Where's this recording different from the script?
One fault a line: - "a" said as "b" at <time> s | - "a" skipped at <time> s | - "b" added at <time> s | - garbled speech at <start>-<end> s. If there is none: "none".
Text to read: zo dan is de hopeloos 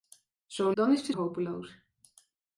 none